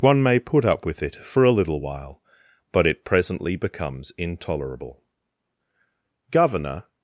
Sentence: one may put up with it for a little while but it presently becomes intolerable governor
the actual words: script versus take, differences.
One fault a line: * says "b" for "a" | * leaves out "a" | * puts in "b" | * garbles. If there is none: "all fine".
all fine